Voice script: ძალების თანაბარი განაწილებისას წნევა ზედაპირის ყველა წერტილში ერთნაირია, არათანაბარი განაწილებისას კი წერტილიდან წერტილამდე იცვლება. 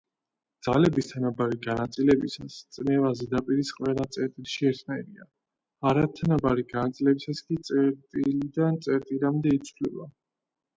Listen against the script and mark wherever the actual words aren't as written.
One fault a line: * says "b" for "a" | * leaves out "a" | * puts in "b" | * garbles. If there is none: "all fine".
all fine